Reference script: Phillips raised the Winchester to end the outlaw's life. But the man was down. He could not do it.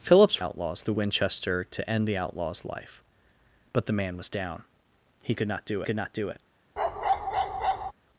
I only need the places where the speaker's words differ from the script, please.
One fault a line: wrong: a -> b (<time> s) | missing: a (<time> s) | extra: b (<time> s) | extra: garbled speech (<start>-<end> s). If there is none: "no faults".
wrong: raised -> outlaw's (0.4 s)
extra: could not do (5.8 s)